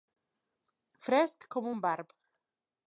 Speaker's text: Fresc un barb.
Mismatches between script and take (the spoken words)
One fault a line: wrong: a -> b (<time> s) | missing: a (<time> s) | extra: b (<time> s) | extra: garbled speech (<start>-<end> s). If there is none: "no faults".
extra: com (1.6 s)